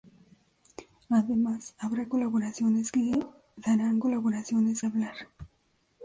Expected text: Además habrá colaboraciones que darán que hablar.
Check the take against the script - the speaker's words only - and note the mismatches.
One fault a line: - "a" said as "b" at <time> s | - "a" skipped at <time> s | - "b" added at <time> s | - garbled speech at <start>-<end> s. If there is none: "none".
- "que" said as "colaboraciones" at 4.0 s